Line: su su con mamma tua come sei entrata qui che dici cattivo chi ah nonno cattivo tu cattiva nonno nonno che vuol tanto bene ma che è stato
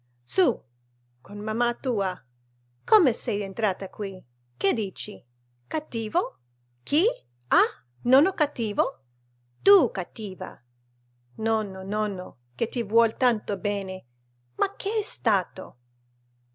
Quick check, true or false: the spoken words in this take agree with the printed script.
false